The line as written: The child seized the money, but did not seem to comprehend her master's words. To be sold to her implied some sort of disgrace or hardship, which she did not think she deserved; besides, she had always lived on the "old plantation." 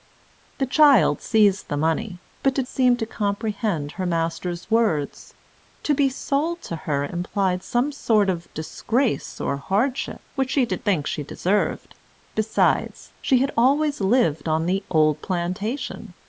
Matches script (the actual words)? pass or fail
fail